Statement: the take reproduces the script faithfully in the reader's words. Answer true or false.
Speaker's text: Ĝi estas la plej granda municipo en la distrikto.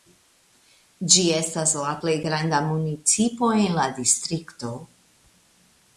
true